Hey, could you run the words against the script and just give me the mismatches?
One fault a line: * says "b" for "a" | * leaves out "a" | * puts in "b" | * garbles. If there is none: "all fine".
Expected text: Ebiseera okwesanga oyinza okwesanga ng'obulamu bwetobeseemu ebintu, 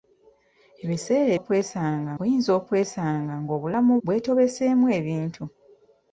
all fine